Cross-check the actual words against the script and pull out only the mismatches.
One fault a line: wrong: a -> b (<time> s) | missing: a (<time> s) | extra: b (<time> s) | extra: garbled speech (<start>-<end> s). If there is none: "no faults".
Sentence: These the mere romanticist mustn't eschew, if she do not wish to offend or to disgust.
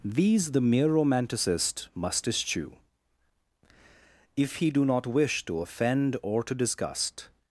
wrong: mustn't -> must (1.9 s)
wrong: she -> he (4.5 s)